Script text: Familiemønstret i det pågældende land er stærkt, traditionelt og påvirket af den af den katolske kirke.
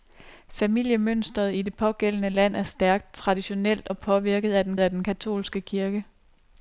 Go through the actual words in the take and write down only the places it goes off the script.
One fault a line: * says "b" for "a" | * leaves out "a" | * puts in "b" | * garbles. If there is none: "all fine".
all fine